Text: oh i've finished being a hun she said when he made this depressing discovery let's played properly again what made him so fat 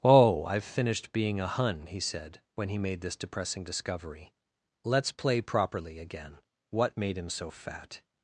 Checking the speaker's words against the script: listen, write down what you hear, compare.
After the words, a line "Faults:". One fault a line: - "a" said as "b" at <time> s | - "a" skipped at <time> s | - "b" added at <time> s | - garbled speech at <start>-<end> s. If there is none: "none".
oh i've finished being a hun he said when he made this depressing discovery let's play properly again what made him so fat
Faults:
- "she" said as "he" at 1.9 s
- "played" said as "play" at 5.1 s